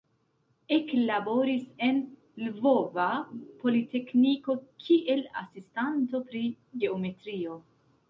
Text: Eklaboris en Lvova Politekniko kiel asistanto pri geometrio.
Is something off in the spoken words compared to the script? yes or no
no